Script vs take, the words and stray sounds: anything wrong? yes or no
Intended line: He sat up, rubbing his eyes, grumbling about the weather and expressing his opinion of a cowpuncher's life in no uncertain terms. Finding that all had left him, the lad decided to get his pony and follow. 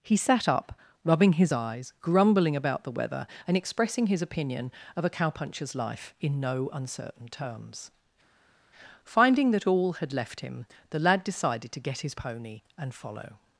no